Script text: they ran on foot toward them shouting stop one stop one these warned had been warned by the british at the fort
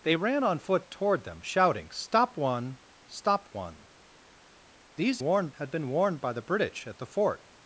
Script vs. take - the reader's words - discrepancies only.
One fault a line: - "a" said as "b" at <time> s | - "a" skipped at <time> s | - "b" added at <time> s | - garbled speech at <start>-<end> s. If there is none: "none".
none